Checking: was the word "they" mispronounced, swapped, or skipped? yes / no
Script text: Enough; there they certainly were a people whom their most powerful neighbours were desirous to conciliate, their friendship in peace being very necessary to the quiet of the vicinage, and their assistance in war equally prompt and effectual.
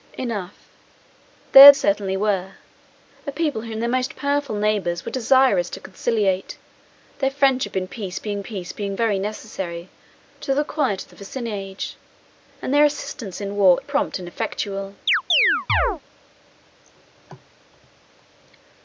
yes